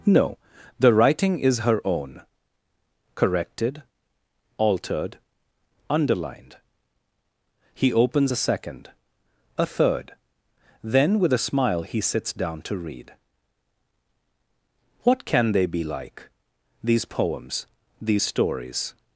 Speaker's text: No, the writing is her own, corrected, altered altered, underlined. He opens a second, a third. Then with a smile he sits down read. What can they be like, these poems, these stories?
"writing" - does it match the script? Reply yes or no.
yes